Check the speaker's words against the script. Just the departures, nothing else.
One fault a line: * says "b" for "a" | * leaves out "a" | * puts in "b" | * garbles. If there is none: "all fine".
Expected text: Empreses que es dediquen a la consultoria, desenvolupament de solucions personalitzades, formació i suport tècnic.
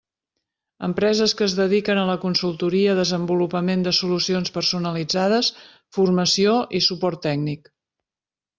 all fine